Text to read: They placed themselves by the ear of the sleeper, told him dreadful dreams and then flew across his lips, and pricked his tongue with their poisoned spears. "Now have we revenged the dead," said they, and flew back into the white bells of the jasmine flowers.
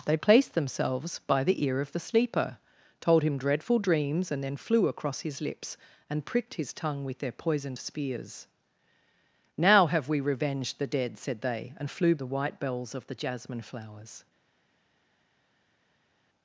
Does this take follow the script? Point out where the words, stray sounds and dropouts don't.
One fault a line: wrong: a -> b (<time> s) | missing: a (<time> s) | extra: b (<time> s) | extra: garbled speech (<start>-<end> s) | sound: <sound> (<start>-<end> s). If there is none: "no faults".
missing: back into (12.2 s)